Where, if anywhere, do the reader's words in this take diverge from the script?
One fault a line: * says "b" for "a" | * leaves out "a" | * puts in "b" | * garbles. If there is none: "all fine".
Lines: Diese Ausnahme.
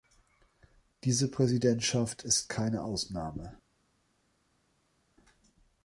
* puts in "Präsidentschaft ist keine"